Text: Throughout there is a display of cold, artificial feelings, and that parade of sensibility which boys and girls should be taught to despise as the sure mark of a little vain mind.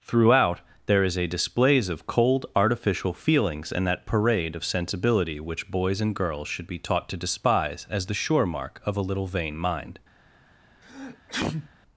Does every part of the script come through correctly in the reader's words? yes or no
no